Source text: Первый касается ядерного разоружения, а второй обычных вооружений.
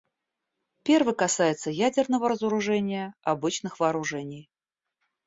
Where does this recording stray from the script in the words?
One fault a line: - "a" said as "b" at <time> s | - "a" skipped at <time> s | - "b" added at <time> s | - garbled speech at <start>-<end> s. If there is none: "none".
- "а второй" skipped at 3.1 s